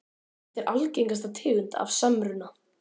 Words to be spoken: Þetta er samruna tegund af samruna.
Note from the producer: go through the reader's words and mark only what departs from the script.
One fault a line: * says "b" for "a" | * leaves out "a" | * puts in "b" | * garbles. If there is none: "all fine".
* says "algengasta" for "samruna"